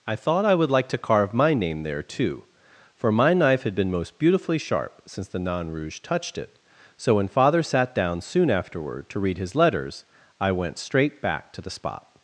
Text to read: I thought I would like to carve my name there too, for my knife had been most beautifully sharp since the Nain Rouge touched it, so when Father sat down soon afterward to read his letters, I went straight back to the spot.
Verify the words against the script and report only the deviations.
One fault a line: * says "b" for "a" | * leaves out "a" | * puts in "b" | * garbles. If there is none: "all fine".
all fine